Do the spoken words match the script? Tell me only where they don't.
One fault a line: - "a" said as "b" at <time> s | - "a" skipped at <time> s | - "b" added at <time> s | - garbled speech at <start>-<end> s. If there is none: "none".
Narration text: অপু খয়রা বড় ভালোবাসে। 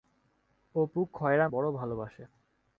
none